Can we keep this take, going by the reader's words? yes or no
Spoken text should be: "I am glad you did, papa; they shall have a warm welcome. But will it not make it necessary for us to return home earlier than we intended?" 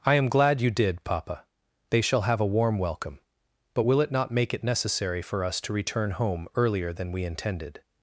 yes